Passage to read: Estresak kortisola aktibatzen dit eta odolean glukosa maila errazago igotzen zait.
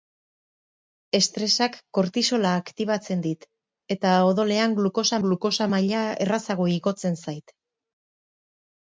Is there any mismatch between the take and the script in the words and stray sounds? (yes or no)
yes